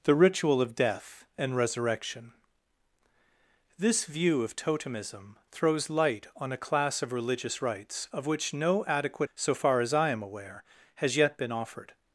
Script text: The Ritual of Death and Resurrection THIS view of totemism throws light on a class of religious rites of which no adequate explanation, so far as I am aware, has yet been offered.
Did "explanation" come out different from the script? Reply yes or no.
yes